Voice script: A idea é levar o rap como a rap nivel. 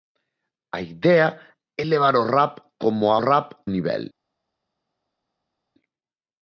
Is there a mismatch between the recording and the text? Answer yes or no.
no